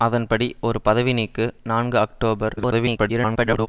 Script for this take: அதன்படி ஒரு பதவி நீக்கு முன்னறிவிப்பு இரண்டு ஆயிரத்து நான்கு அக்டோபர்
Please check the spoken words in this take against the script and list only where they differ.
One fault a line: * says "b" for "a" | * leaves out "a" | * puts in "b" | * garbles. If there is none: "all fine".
* leaves out "முன்னறிவிப்பு இரண்டு ஆயிரத்து"
* garbles